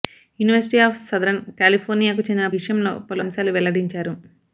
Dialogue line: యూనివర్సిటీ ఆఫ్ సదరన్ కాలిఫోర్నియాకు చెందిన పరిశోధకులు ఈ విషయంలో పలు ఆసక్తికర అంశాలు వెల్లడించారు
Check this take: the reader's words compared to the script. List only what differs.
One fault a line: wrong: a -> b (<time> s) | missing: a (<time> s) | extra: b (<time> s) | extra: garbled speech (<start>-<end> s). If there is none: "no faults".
missing: పరిశోధకులు ఈ (2.5 s)
missing: ఆసక్తికర (3.2 s)